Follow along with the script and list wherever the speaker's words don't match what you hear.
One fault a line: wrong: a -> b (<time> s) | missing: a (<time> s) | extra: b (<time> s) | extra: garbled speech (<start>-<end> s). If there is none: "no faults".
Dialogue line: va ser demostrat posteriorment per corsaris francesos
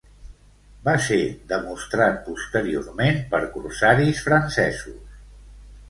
no faults